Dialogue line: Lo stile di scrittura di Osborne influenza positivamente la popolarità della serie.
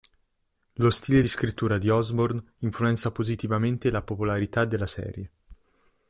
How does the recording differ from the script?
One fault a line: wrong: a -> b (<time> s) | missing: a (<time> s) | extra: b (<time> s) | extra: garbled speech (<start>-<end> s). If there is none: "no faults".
missing: di (1.2 s)